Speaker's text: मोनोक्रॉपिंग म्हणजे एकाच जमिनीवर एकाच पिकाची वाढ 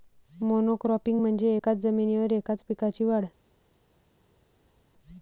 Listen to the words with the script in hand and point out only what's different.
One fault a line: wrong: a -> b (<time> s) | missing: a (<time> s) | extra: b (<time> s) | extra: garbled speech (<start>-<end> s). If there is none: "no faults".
no faults